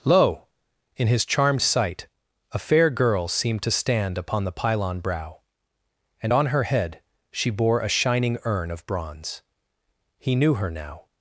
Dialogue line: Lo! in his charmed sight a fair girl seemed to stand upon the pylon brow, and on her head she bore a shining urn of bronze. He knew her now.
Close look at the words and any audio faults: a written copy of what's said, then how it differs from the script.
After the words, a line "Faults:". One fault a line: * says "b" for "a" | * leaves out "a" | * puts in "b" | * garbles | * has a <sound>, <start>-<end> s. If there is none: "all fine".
Lo! in his charmed sight a fair girl seemed to stand upon the pylon brow, and on her head she bore a shining urn of bronze. He knew her now.
Faults:
all fine